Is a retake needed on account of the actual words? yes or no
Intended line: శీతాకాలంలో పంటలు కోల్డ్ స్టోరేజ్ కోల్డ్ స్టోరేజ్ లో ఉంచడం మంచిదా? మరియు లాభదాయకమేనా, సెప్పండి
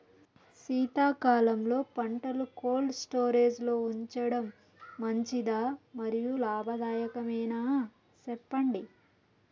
yes